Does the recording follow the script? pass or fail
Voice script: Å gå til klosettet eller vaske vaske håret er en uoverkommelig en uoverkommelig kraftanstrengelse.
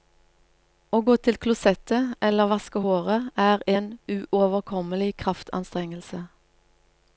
fail